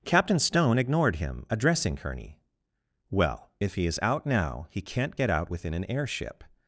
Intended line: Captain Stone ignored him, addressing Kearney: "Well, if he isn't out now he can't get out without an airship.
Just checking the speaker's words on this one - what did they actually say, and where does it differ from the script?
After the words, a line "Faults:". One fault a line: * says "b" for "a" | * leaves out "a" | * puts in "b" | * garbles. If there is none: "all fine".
Captain Stone ignored him, addressing Kearney: "Well, if he is out now he can't get out within an airship.
Faults:
* says "is" for "isn't"
* says "within" for "without"